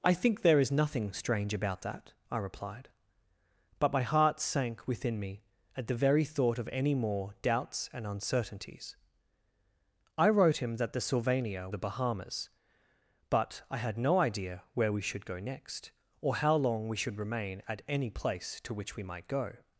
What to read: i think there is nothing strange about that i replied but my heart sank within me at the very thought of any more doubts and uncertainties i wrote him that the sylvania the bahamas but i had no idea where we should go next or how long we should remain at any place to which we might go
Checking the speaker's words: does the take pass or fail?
pass